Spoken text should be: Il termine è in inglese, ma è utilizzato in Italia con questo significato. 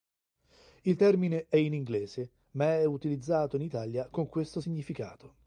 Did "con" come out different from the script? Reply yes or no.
no